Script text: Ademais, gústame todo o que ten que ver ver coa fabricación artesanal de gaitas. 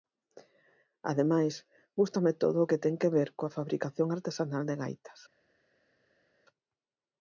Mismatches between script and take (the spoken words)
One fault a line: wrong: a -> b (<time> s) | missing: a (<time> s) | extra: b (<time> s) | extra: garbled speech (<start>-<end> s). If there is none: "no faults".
missing: ver (3.3 s)